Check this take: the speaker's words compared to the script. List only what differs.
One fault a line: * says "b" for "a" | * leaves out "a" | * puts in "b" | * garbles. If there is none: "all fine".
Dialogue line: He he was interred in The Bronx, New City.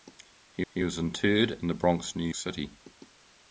all fine